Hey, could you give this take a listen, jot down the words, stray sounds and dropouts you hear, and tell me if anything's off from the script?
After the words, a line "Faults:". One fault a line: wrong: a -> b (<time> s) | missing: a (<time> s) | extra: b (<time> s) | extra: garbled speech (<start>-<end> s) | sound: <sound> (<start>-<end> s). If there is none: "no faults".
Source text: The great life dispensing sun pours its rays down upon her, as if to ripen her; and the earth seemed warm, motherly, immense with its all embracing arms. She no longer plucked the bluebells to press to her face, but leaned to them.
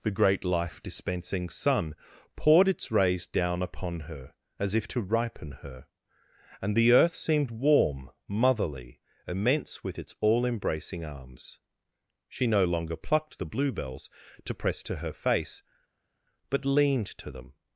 The great life dispensing sun poured its rays down upon her, as if to ripen her; and the earth seemed warm, motherly, immense with its all embracing arms. She no longer plucked the bluebells to press to her face, but leaned to them.
Faults:
wrong: pours -> poured (2.4 s)